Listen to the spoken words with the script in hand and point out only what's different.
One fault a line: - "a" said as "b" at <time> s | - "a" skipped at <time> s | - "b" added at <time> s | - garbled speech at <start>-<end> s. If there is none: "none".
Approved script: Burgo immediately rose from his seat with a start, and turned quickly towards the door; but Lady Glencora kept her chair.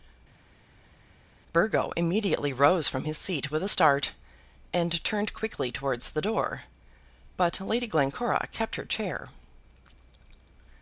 none